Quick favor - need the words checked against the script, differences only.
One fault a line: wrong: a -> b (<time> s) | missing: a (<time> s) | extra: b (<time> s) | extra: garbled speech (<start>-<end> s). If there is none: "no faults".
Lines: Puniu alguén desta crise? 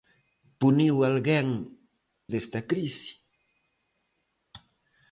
no faults